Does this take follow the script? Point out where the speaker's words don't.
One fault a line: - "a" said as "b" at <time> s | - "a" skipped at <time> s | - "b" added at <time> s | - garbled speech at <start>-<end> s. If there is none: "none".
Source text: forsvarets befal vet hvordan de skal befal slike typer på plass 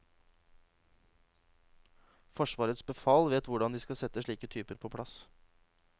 - "befal" said as "sette" at 4.0 s